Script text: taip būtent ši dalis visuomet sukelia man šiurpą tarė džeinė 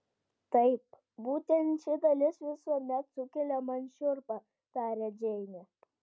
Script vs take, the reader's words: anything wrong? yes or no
no